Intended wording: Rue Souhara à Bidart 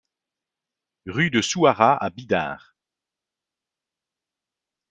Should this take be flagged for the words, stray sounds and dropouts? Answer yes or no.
yes